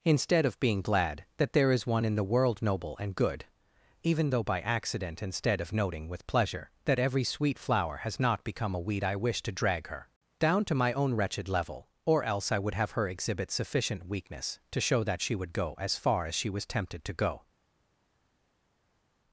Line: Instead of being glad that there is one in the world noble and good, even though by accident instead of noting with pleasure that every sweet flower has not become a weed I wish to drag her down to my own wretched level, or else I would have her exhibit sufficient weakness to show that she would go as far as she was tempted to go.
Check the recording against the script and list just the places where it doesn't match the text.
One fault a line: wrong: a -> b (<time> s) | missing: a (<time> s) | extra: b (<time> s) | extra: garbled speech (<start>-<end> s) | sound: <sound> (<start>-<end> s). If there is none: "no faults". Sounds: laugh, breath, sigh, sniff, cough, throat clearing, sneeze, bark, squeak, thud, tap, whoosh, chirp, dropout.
no faults